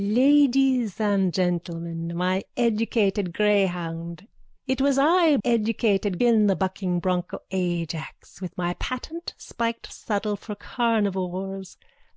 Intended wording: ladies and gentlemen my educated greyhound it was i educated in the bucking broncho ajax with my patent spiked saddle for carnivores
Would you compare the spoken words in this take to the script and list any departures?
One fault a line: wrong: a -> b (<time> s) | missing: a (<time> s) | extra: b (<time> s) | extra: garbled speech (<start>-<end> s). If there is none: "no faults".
no faults